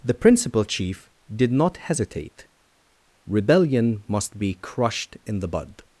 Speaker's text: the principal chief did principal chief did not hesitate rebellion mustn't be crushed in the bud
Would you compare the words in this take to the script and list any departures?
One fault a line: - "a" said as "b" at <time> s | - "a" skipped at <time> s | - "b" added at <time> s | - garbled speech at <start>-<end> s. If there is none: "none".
- "principal chief did" skipped at 1.5 s
- "mustn't" said as "must" at 4.1 s